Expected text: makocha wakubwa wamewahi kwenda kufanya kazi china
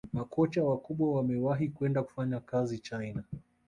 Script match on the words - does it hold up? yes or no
yes